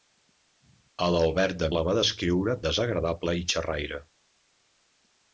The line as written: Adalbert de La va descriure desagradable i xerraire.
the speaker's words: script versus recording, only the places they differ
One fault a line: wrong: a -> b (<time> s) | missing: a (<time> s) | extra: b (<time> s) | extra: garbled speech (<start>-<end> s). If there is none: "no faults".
no faults